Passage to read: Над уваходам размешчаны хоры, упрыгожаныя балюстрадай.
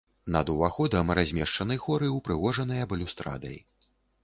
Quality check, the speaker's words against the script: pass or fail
pass